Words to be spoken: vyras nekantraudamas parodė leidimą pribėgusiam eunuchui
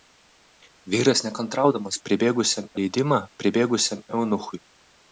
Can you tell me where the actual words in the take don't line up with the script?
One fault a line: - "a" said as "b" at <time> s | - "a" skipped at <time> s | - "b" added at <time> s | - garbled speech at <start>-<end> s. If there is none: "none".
- "parodė" said as "pribėgusiam" at 2.1 s